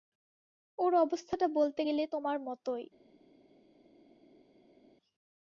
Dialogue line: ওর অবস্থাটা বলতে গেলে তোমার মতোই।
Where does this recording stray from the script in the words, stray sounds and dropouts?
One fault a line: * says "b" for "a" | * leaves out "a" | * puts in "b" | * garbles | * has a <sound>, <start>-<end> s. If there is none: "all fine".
all fine